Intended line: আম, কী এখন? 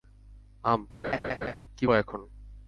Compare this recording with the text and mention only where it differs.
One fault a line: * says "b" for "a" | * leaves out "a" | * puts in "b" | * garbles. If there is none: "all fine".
all fine